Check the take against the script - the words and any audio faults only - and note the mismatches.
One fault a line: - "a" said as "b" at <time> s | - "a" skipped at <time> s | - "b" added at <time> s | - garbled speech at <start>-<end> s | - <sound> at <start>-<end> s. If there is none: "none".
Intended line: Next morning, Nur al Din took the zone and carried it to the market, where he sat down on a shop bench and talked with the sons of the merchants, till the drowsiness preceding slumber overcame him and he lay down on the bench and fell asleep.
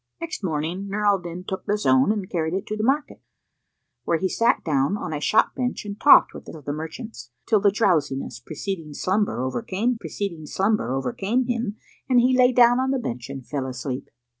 - "sons" skipped at 6.5 s
- "preceding slumber overcame" added at 9.9 s